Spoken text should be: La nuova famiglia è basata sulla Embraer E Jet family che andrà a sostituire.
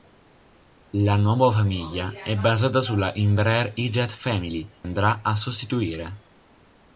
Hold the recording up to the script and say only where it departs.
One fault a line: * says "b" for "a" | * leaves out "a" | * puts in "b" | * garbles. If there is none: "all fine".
* leaves out "che"